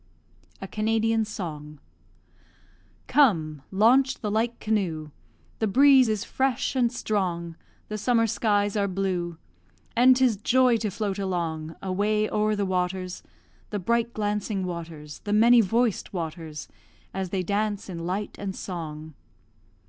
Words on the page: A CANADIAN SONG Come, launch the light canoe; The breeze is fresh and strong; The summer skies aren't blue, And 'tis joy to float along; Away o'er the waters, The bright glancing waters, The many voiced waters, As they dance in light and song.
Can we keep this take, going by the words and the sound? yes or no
no